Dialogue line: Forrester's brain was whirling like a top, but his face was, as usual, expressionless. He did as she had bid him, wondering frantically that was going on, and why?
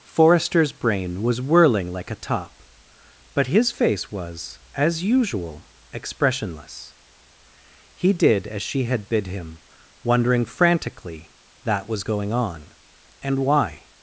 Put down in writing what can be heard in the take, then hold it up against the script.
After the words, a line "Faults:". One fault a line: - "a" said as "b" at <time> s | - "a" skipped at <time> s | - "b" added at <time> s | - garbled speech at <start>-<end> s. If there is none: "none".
Forrester's brain was whirling like a top, but his face was, as usual, expressionless. He did as she had bid him, wondering frantically that was going on, and why?
Faults:
none